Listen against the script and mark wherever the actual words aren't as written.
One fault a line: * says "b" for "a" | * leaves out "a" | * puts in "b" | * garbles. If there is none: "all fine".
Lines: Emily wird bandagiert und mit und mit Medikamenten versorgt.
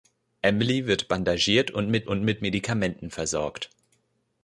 all fine